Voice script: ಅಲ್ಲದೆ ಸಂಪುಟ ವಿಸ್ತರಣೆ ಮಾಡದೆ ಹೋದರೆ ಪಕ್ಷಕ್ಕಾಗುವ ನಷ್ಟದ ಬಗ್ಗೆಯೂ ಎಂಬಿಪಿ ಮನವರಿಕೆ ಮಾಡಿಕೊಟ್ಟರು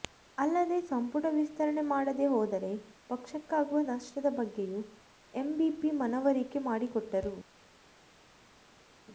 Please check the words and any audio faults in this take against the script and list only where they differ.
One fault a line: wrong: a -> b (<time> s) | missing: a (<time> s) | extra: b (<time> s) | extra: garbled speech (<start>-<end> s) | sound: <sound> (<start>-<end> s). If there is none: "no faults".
no faults